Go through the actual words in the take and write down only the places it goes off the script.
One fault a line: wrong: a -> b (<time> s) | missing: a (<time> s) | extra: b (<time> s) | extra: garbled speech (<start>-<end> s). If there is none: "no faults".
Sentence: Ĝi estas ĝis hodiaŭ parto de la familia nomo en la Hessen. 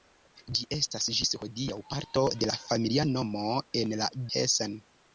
no faults